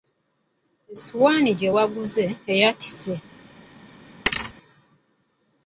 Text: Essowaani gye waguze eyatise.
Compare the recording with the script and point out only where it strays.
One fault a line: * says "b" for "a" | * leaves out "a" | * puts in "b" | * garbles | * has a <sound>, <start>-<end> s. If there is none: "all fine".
* has a thud, 4.3-4.5 s